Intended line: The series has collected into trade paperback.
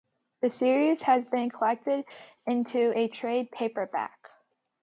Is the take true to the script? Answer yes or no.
no